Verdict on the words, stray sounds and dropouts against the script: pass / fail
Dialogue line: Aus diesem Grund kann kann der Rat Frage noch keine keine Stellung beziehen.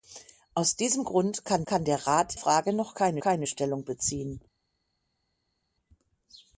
pass